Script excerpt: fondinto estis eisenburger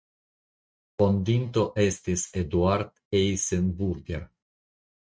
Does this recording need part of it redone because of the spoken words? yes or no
yes